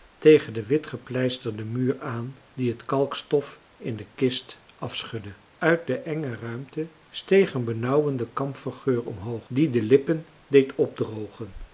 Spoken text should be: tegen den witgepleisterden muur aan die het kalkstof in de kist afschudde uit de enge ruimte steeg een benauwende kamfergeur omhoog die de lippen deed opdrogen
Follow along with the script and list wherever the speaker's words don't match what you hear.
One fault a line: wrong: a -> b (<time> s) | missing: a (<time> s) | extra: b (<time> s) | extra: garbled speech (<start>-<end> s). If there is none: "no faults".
no faults